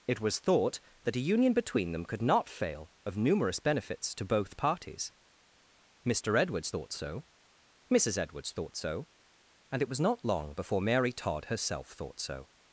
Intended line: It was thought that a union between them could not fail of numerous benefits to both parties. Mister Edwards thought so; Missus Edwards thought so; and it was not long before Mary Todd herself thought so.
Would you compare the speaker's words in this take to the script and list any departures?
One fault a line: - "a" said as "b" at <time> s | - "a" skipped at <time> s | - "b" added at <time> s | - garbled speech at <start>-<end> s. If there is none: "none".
none